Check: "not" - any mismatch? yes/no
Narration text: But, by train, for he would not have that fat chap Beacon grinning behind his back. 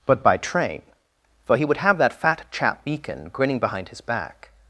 yes